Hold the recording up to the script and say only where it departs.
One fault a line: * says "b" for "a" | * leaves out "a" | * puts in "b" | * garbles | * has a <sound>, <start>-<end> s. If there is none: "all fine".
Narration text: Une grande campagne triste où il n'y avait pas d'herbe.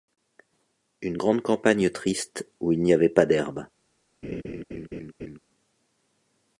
* has a laugh, 4.2-5.4 s